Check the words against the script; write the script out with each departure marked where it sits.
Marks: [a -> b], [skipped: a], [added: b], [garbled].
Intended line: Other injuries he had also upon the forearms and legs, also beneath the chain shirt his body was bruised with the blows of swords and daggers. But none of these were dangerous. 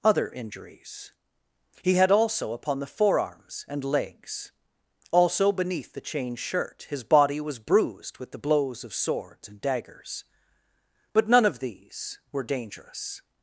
Other injuries he had also upon the forearms and legs, also beneath the chain shirt his body was bruised with the blows of swords and daggers. But none of these were dangerous.